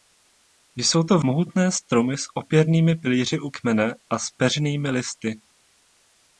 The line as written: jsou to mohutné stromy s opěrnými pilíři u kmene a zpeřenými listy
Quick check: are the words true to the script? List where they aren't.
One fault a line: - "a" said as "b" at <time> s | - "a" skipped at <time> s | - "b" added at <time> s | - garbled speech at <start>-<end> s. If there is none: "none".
none